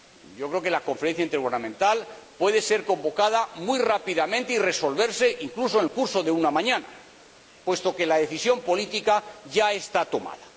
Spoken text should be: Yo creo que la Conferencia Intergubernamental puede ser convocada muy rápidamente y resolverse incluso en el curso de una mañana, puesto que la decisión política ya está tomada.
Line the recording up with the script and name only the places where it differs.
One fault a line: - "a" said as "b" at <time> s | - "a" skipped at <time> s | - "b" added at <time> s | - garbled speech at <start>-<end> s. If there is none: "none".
none